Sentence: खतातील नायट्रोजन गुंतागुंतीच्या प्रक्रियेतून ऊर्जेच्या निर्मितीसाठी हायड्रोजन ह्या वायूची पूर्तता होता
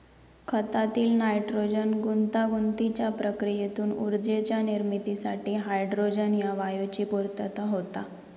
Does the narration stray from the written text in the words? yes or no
no